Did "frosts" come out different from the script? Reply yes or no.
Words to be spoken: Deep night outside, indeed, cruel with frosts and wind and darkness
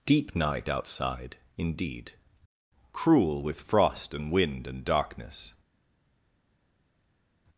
yes